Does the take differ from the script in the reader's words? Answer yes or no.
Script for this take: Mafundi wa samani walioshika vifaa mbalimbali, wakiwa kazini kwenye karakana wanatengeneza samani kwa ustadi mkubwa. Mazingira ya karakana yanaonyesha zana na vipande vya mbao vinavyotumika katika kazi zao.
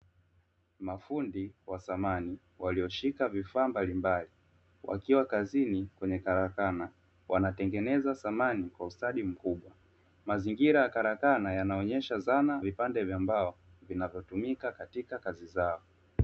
yes